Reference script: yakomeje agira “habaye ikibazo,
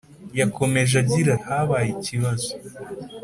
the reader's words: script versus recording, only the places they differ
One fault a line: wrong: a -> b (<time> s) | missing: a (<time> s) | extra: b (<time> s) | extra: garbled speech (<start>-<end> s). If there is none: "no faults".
no faults